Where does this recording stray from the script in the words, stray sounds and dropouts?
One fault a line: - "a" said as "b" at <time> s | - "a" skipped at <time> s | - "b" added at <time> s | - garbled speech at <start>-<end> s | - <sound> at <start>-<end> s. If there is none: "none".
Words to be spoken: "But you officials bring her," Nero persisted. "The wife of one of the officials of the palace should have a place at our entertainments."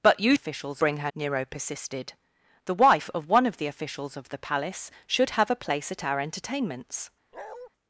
- bark at 7.3-7.7 s